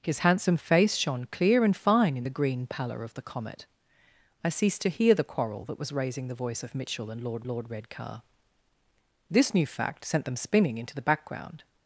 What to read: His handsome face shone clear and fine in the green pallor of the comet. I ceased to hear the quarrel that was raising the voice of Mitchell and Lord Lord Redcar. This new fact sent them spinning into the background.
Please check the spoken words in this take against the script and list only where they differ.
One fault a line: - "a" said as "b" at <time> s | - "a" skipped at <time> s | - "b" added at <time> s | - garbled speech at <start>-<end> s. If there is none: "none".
none